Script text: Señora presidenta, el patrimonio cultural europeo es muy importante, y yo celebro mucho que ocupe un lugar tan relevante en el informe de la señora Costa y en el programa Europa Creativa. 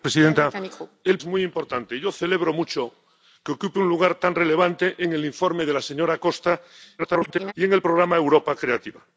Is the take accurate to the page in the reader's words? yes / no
no